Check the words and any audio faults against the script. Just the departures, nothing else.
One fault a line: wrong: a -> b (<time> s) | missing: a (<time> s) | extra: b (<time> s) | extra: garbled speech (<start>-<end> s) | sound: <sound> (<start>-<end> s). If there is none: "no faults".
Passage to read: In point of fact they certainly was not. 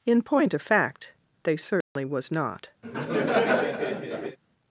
sound: dropout (1.8-2.0 s)
sound: laugh (2.8-4.4 s)